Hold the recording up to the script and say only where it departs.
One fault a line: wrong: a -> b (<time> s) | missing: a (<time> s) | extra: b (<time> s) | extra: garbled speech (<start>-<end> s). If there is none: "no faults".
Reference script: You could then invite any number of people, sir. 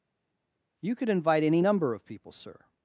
missing: then (1.1 s)